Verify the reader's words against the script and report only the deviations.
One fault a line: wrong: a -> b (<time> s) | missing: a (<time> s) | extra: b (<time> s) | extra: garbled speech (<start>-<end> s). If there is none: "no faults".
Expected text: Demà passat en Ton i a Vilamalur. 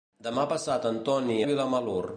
no faults